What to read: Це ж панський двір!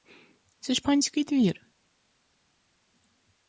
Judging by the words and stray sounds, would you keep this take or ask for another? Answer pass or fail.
pass